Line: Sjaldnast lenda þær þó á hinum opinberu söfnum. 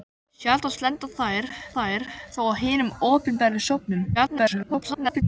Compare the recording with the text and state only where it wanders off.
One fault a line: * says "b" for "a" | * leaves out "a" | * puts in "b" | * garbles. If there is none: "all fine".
* puts in "þær"
* garbles